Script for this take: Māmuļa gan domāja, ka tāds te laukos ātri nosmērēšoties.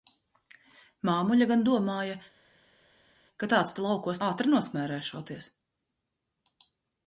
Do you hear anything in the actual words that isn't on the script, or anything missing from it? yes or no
no